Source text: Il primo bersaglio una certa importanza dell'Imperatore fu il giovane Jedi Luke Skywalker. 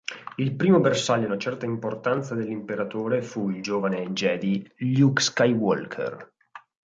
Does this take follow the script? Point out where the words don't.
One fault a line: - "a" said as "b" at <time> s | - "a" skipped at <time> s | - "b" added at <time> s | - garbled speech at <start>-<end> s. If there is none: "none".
none